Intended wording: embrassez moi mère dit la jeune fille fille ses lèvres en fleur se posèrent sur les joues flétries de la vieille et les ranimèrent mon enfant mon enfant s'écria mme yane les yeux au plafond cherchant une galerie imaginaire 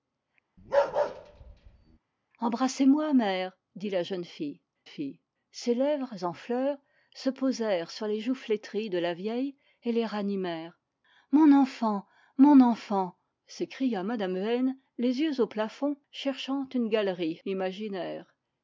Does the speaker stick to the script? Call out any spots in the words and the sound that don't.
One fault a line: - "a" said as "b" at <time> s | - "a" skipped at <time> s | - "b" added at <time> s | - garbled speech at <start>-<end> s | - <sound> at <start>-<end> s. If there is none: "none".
- bark at 0.6-2.0 s